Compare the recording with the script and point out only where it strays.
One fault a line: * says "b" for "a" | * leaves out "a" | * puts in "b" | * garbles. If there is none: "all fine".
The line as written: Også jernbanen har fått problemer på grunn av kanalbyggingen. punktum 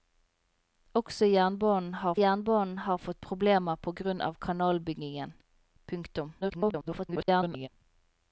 * puts in "jernbanen har"
* garbles